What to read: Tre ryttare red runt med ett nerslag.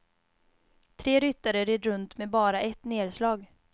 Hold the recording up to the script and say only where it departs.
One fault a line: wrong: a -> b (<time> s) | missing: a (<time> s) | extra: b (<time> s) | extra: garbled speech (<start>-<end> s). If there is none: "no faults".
extra: bara (2.3 s)